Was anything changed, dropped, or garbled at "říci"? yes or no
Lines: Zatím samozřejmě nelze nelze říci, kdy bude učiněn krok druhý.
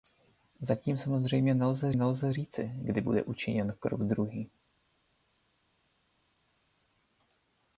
no